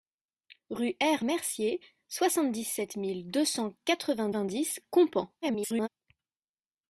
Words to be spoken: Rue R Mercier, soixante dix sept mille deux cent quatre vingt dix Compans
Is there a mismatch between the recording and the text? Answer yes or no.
yes